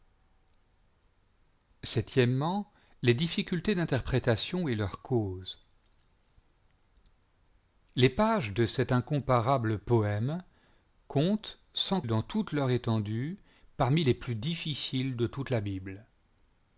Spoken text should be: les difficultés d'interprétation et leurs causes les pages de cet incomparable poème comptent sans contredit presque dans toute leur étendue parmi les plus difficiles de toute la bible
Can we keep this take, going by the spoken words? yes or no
no